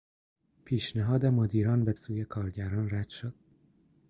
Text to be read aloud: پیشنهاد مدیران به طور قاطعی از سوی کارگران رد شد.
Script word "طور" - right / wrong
wrong